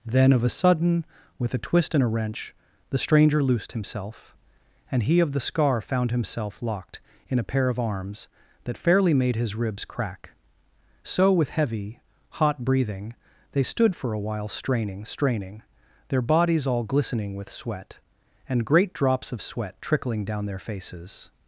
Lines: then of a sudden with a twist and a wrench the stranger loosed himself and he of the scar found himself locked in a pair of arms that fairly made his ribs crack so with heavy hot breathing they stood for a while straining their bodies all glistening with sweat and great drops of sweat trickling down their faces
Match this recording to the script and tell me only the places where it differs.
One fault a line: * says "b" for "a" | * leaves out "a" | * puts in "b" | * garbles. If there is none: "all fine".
* puts in "straining"